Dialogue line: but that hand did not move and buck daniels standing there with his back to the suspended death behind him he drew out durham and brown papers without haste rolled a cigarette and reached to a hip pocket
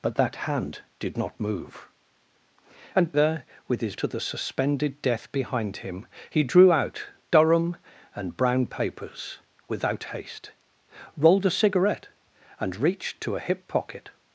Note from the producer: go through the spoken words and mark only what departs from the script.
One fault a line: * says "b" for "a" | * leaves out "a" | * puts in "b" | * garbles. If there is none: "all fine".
* leaves out "buck daniels standing"
* leaves out "back"